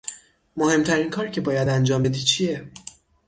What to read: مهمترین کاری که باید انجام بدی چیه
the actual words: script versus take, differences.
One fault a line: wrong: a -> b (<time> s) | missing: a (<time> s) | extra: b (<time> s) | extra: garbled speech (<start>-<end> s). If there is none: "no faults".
no faults